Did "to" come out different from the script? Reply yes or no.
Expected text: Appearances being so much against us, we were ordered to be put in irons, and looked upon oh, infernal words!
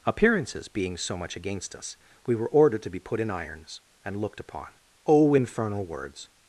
no